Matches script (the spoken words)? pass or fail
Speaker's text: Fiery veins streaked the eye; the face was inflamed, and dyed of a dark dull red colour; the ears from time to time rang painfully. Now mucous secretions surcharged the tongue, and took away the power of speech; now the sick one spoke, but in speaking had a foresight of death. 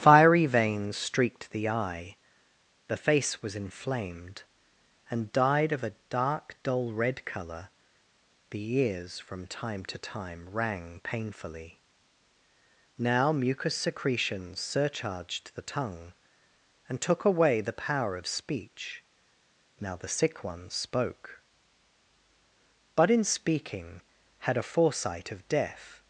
pass